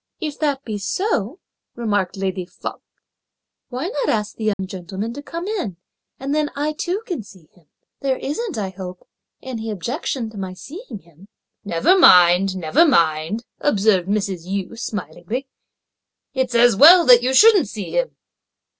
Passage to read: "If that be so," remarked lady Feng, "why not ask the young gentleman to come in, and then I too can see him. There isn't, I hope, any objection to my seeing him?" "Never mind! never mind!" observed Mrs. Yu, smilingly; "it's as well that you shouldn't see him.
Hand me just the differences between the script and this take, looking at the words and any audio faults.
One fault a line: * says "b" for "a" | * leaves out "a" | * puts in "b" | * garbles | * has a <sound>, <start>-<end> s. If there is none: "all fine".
* has a dropout, 4.5-4.6 s